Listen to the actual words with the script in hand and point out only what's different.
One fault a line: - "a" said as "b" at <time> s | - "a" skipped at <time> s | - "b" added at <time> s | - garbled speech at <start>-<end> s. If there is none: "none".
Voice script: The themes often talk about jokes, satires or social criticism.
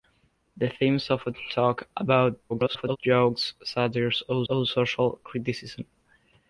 - garbled speech at 2.5-3.0 s
- "or" added at 4.5 s